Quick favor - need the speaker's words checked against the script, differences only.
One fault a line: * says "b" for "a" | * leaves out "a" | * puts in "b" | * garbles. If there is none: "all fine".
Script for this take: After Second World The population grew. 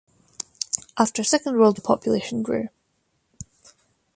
all fine